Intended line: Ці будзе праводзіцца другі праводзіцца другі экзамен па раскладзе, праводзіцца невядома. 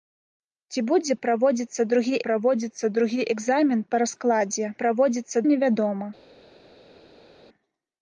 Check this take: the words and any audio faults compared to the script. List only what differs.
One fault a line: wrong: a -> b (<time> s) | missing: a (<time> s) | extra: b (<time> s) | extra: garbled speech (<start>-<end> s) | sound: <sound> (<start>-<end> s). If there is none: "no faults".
no faults